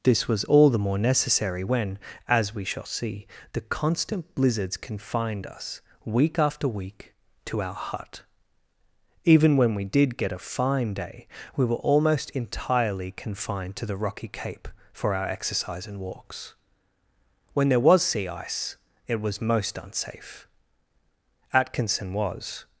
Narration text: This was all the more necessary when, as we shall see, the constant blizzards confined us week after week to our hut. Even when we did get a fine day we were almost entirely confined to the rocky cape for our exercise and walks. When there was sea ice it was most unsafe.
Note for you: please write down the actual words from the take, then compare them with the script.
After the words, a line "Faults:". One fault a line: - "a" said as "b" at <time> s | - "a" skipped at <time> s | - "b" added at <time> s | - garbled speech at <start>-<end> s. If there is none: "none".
This was all the more necessary when, as we shall see, the constant blizzards confined us week after week to our hut. Even when we did get a fine day we were almost entirely confined to the rocky cape for our exercise and walks. When there was sea ice it was most unsafe. Atkinson was
Faults:
- "Atkinson was" added at 21.5 s